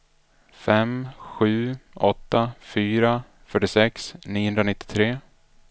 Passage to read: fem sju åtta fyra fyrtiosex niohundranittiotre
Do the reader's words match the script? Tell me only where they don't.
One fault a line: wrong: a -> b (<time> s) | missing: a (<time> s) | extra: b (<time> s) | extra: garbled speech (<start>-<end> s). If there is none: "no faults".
no faults